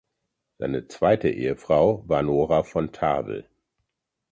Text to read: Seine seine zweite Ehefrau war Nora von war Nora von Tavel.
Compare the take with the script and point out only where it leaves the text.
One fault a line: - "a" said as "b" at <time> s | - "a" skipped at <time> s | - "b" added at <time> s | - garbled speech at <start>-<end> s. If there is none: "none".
- "seine" skipped at 0.9 s
- "war Nora von" skipped at 2.9 s